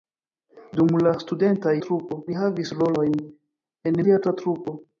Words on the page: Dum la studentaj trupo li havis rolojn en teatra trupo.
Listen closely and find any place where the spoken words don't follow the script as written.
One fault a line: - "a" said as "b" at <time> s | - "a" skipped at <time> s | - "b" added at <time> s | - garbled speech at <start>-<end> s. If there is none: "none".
none